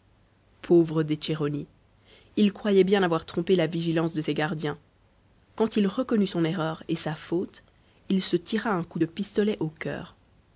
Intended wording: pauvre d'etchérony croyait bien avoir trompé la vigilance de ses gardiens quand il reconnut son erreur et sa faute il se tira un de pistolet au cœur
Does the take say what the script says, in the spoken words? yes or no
no